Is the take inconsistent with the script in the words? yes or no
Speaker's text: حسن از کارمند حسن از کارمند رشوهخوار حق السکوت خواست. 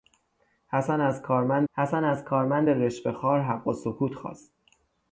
no